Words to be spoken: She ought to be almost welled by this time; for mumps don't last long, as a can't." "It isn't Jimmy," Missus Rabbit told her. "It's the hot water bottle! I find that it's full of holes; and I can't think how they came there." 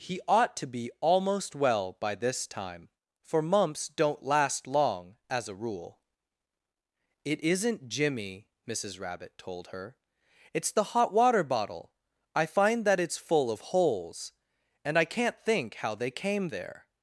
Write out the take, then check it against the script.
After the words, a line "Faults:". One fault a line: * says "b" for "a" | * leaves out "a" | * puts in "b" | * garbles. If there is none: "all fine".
He ought to be almost well by this time; for mumps don't last long, as a rule." "It isn't Jimmy," Missus Rabbit told her. "It's the hot water bottle! I find that it's full of holes; and I can't think how they came there."
Faults:
* says "He" for "She"
* says "well" for "welled"
* says "rule" for "can't"